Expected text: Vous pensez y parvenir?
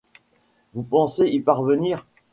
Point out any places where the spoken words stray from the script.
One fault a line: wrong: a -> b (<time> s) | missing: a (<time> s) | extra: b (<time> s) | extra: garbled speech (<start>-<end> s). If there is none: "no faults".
no faults